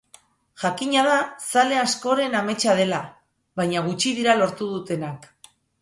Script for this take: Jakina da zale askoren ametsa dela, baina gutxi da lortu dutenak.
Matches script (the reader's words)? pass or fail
fail